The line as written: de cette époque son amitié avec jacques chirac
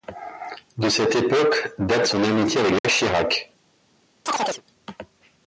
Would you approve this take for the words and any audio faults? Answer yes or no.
no